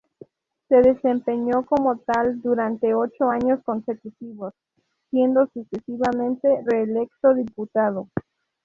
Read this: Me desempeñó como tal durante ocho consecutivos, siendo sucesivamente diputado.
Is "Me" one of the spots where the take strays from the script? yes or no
yes